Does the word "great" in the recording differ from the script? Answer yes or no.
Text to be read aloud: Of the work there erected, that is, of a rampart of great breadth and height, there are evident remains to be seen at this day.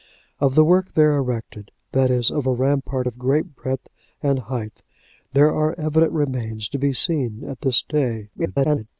no